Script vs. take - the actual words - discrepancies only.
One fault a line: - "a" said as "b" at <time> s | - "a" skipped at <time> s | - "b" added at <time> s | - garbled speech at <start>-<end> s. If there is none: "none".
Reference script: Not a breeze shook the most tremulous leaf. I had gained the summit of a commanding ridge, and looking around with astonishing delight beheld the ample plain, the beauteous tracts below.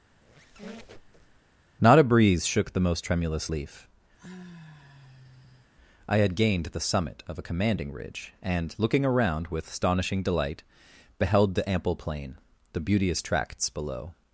none